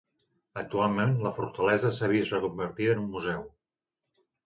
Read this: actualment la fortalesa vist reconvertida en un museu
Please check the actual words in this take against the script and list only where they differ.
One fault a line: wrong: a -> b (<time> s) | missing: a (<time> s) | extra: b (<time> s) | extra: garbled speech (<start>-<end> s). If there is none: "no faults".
extra: s'ha (2.0 s)